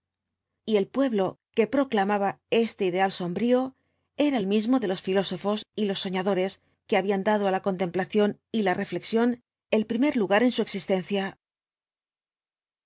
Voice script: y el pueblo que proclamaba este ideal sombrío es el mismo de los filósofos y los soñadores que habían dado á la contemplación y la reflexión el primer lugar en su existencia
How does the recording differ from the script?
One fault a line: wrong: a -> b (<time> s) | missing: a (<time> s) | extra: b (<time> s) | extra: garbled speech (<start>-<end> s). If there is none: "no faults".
wrong: es -> era (4.2 s)